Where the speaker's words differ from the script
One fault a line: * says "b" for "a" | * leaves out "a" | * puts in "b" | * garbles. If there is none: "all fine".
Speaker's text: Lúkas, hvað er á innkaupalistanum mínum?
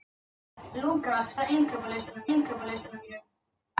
* leaves out "hvað"
* puts in "innkaupalistanum"